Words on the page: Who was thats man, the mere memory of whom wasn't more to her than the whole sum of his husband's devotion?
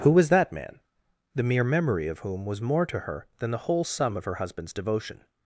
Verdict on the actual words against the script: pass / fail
fail